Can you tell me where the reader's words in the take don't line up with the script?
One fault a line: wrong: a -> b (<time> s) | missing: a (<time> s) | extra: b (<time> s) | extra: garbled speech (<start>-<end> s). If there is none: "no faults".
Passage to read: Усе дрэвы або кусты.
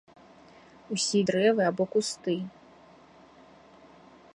no faults